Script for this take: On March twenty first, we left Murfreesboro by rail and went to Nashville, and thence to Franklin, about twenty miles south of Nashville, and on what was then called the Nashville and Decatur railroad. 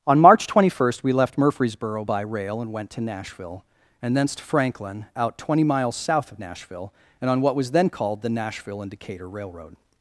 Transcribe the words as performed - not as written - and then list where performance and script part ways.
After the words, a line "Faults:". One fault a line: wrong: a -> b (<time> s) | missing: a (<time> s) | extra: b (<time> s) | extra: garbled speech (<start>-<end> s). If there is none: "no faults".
On March twenty first, we left Murfreesboro by rail and went to Nashville, and thence to Franklin, out twenty miles south of Nashville, and on what was then called the Nashville and Decatur railroad.
Faults:
wrong: about -> out (5.2 s)